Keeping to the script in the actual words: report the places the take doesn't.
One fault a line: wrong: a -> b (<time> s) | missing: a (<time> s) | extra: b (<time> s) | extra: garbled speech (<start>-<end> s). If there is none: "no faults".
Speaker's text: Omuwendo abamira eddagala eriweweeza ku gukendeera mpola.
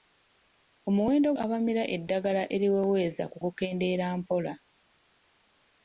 no faults